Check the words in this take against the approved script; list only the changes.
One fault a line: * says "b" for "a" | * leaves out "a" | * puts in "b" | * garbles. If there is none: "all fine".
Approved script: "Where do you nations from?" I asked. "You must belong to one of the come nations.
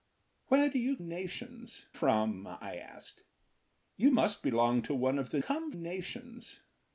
all fine